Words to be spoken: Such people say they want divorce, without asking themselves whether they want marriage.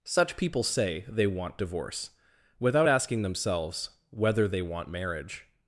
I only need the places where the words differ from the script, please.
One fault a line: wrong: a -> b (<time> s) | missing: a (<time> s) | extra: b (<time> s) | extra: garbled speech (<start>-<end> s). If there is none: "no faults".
no faults